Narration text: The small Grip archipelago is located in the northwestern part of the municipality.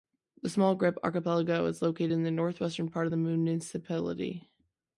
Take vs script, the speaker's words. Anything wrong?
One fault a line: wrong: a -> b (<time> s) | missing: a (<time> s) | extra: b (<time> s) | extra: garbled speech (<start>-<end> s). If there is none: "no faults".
no faults